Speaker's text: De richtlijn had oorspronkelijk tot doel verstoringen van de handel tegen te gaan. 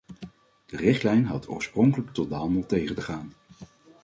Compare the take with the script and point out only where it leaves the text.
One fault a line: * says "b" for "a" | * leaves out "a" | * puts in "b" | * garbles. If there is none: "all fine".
* leaves out "doel verstoringen van"